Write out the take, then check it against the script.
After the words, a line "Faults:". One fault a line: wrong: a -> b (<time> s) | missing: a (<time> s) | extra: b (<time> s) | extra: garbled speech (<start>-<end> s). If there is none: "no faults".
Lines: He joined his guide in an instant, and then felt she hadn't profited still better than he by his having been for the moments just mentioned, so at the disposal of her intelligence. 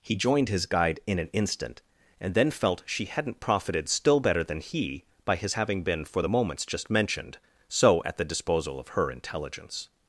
He joined his guide in an instant, and then felt she hadn't profited still better than he by his having been for the moments just mentioned, so at the disposal of her intelligence.
Faults:
no faults